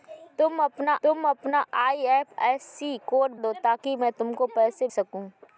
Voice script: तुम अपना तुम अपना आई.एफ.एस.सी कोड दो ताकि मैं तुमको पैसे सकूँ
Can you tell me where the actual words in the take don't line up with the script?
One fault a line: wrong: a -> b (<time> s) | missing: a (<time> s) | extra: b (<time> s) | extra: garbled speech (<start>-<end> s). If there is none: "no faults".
no faults